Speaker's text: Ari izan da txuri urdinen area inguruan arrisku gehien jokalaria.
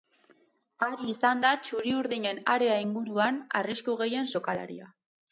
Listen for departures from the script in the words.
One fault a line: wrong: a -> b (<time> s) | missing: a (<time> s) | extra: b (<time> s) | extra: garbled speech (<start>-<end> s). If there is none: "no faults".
no faults